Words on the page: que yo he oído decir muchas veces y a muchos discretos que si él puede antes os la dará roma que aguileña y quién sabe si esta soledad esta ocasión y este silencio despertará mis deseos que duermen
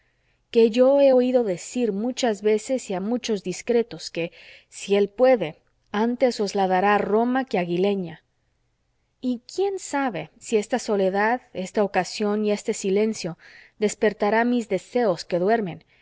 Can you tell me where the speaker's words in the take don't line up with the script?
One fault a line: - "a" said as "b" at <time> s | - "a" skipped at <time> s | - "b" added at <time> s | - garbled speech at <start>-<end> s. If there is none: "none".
none